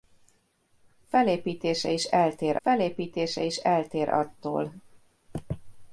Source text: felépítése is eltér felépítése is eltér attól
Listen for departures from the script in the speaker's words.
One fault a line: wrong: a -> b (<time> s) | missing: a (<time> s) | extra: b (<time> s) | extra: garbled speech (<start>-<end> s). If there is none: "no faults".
no faults